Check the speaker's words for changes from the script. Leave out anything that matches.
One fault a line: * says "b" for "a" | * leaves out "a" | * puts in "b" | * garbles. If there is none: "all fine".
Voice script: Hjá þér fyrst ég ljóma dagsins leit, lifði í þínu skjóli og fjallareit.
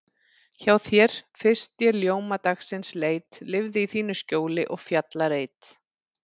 all fine